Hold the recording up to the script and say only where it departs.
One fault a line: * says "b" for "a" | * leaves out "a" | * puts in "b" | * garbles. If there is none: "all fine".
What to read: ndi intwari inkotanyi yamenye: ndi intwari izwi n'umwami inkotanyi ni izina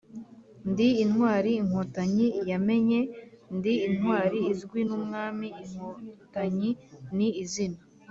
all fine